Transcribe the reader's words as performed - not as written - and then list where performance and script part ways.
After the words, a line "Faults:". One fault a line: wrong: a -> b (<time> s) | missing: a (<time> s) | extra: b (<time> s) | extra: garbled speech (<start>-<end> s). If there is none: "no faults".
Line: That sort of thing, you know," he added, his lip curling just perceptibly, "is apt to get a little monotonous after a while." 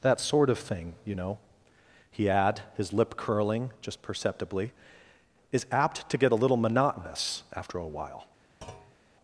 That sort of thing, you know," he add, his lip curling just perceptibly, "is apt to get a little monotonous after a while."
Faults:
wrong: added -> add (2.3 s)